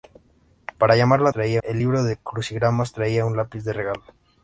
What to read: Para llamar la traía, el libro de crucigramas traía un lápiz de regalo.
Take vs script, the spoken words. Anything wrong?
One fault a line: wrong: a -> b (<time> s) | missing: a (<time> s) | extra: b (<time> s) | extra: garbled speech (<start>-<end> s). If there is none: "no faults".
no faults